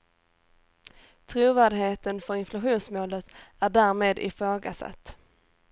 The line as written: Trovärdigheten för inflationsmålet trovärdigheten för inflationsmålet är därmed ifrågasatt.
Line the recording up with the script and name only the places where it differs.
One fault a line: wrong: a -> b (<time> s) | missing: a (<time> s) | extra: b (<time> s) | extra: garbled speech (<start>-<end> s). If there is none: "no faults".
missing: trovärdigheten för inflationsmålet (3.2 s)